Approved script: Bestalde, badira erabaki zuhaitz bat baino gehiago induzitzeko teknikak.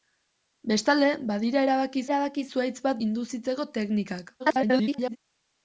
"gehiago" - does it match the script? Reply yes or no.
no